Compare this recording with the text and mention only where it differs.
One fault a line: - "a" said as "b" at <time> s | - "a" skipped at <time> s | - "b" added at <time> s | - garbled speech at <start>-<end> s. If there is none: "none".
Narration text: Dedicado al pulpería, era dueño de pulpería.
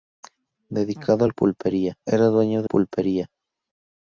none